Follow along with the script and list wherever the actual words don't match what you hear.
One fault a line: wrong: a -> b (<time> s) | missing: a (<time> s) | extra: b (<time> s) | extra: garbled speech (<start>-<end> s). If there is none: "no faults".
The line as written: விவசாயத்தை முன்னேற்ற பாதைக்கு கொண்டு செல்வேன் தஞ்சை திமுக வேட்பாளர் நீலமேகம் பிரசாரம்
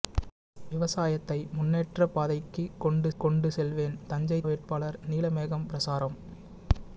extra: கொண்டு (3.2 s)
missing: திமுக (4.4 s)